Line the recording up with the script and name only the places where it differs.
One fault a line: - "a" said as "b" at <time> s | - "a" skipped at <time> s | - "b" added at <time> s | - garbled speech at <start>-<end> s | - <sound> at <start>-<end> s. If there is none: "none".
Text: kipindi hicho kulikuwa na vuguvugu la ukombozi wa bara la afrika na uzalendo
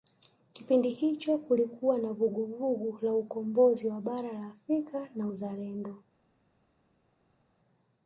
none